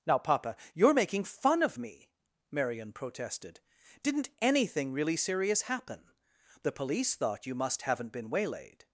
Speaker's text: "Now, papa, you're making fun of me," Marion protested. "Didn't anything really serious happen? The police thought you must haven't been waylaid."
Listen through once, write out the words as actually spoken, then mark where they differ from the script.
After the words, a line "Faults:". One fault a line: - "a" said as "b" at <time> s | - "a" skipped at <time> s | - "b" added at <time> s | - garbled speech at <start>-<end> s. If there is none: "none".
"Now, papa, you're making fun of me," Marion protested. "Didn't anything really serious happen? The police thought you must haven't been waylaid."
Faults:
none